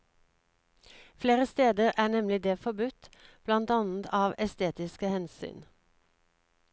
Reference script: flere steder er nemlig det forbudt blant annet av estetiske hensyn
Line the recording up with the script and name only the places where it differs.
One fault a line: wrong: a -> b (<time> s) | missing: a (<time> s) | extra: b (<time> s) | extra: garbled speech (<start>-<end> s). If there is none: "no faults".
no faults